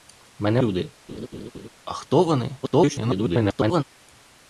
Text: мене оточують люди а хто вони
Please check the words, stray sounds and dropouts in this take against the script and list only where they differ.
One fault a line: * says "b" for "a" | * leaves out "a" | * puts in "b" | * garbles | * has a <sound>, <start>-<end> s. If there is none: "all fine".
* leaves out "оточують"
* has a laugh, 1.1-1.7 s
* garbles